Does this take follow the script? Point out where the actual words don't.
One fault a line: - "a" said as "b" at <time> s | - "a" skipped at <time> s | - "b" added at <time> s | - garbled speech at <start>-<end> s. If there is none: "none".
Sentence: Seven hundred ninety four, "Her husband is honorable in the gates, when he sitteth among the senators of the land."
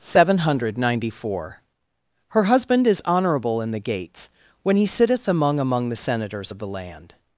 - "among" added at 5.6 s